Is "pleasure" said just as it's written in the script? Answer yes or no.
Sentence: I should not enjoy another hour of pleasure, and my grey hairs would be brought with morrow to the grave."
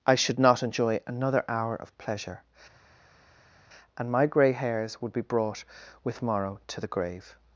yes